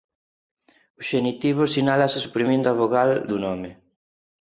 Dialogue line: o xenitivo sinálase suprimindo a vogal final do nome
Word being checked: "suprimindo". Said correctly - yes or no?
yes